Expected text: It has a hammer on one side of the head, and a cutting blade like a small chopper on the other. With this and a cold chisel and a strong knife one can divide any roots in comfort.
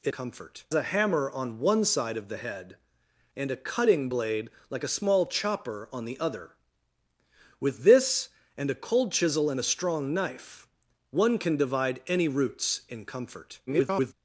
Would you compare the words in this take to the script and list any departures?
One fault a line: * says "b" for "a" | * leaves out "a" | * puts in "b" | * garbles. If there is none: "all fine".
* says "comfort" for "has"
* garbles